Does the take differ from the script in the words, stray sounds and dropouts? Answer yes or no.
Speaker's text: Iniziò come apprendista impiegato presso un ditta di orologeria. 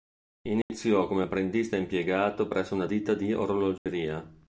yes